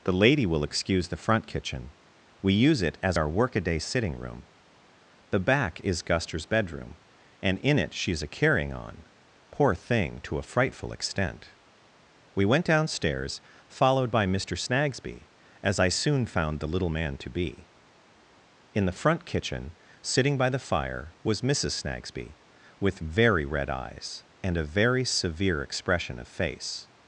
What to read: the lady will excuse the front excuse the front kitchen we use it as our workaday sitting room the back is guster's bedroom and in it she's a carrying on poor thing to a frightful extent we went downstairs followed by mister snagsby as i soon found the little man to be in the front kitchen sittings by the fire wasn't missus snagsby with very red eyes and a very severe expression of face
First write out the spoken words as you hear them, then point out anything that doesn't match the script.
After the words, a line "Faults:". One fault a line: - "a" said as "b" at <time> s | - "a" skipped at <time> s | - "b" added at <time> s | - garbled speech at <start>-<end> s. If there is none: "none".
the lady will excuse the front kitchen we use it as our workaday sitting room the back is guster's bedroom and in it she's a carrying on poor thing to a frightful extent we went downstairs followed by mister snagsby as i soon found the little man to be in the front kitchen sitting by the fire was missus snagsby with very red eyes and a very severe expression of face
Faults:
- "excuse the front" skipped at 1.4 s
- "sittings" said as "sitting" at 20.0 s
- "wasn't" said as "was" at 21.2 s